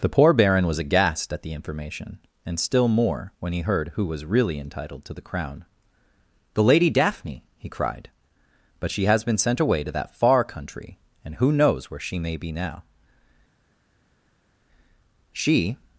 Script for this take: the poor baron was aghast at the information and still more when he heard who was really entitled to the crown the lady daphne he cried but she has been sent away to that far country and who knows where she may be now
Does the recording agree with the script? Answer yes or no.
no